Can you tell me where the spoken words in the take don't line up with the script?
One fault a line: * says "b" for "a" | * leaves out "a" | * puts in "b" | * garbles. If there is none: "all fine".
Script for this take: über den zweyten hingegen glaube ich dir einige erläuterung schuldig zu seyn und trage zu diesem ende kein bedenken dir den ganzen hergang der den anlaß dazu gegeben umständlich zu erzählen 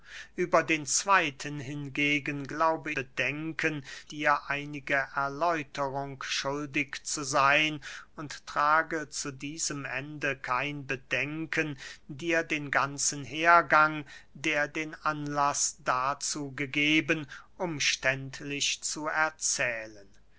* says "bedenken" for "ich"